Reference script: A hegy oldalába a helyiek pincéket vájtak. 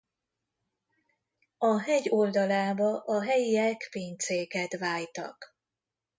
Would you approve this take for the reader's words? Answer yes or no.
yes